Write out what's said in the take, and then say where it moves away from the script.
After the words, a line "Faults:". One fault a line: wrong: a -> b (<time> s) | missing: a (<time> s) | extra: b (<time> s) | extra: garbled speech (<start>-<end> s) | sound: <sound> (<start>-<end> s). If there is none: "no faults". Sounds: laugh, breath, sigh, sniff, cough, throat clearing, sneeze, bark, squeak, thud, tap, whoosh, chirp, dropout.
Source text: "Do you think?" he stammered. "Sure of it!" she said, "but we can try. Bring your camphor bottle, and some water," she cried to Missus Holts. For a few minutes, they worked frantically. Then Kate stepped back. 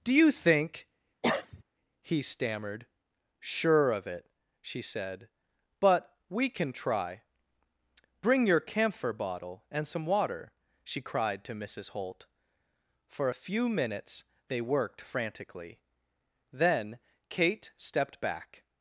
"Do you think?" he stammered. "Sure of it!" she said, "but we can try. Bring your camphor bottle, and some water," she cried to Missus Holt. For a few minutes, they worked frantically. Then Kate stepped back.
Faults:
sound: cough (1.2-1.6 s)
wrong: Holts -> Holt (11.9 s)